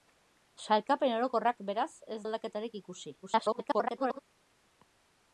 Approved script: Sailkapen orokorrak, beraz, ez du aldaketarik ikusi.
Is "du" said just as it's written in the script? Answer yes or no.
no